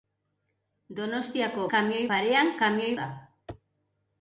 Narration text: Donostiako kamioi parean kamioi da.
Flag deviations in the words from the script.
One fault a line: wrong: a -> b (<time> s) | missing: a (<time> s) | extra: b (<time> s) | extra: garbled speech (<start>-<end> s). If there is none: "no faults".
no faults